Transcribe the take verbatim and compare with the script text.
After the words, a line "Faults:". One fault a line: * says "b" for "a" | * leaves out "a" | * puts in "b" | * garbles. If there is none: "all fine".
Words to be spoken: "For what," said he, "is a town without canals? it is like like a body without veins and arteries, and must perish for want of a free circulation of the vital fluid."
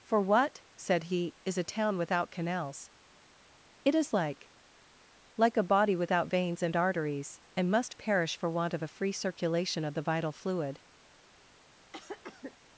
"For what," said he, "is a town without canals? it is like like a body without veins and arteries, and must perish for want of a free circulation of the vital fluid."
Faults:
all fine